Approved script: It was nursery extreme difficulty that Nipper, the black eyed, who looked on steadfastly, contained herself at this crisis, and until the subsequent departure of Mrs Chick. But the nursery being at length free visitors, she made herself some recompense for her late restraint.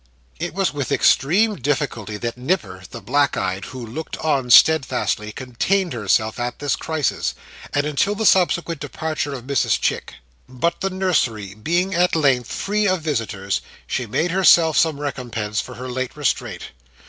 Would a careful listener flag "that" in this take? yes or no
no